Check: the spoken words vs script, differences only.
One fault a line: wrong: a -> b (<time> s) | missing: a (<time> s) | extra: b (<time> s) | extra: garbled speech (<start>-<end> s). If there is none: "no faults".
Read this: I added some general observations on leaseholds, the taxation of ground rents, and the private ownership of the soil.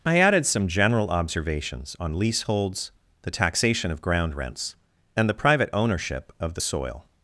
no faults